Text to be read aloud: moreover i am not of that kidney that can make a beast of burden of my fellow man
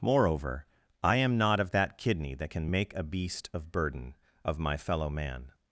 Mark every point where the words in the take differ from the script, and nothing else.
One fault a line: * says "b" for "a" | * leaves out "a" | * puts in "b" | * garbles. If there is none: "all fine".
all fine